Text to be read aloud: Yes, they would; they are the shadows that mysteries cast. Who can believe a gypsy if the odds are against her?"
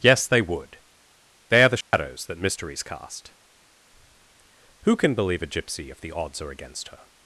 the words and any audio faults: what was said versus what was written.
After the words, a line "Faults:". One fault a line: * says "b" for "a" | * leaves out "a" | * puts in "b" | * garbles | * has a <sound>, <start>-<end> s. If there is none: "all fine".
Yes, they would; they are the shadows that mysteries cast. Who can believe a gypsy if the odds are against her?"
Faults:
* has a dropout, 1.8-1.9 s